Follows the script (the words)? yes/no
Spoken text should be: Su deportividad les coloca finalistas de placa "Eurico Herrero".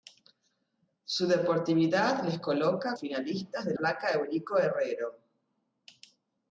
yes